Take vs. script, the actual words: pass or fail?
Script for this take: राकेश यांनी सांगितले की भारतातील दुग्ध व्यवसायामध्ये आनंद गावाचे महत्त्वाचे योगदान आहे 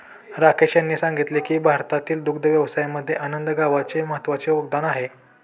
pass